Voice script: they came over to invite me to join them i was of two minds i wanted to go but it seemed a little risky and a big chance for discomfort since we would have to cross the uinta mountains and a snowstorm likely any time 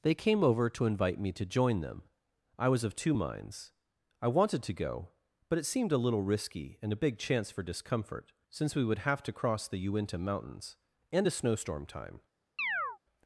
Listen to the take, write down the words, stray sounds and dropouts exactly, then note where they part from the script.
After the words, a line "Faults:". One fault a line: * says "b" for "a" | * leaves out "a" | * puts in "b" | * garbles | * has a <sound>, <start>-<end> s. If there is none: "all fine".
they came over to invite me to join them i was of two minds i wanted to go but it seemed a little risky and a big chance for discomfort since we would have to cross the uinta mountains and a snowstorm time
Faults:
* leaves out "likely any"
* has a chirp, 12.6-13.0 s